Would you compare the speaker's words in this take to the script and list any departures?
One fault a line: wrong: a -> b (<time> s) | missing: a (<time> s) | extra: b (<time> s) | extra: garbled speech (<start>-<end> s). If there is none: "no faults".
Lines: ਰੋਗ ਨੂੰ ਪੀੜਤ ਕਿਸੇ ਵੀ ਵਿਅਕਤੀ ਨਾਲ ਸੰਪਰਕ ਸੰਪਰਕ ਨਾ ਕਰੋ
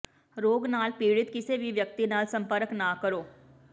wrong: ਨੂੰ -> ਨਾਲ (0.7 s)
missing: ਸੰਪਰਕ (2.7 s)